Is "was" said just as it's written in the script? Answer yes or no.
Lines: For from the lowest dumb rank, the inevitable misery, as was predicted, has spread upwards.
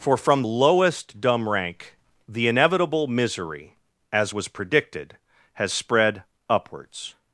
yes